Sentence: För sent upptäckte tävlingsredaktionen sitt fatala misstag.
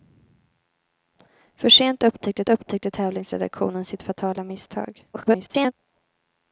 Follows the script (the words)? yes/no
no